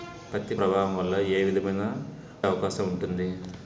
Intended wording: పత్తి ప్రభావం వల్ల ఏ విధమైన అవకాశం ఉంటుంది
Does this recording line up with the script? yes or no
yes